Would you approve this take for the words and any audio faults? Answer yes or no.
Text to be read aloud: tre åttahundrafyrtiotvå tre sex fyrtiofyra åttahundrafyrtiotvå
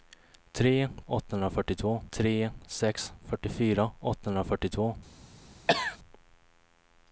no